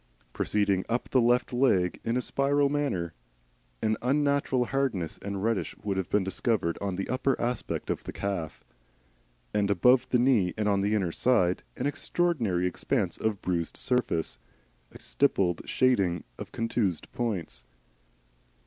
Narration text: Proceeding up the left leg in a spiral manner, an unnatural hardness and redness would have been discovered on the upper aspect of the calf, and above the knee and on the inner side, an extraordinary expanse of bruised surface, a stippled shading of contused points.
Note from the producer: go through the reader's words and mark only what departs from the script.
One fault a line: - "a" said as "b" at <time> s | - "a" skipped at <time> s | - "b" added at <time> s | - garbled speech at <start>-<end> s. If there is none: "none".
none